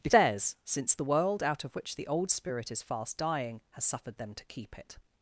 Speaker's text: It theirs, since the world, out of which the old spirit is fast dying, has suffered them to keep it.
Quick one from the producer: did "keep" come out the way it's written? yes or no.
yes